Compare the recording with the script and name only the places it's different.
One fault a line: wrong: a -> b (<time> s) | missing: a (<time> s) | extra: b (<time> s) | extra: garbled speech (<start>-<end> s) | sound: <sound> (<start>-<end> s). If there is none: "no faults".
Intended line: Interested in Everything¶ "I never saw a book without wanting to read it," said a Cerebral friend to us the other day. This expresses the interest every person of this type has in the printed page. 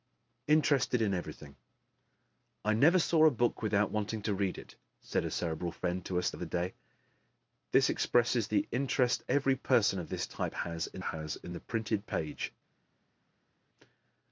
missing: the (6.3 s)
extra: has in (11.0 s)